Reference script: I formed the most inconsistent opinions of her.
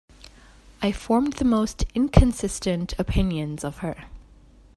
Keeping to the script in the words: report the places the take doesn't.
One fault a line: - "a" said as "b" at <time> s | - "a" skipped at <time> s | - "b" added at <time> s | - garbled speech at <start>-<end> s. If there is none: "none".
none